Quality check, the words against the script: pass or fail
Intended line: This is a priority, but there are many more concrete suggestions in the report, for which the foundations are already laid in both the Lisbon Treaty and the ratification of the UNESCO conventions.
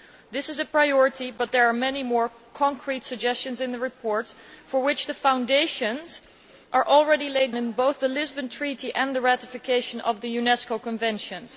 pass